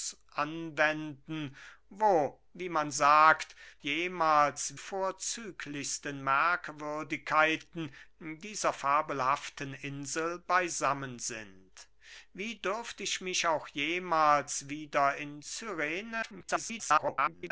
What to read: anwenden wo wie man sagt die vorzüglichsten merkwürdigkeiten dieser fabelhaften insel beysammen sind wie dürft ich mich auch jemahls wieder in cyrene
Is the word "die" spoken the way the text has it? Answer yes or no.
no